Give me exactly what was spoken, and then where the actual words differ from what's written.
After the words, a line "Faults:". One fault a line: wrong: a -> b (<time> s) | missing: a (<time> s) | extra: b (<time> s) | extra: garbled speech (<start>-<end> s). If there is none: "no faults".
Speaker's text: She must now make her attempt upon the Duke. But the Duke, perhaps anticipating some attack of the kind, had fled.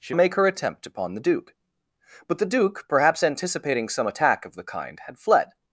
She make her attempt upon the Duke. But the Duke, perhaps anticipating some attack of the kind, had fled.
Faults:
missing: must now (0.1 s)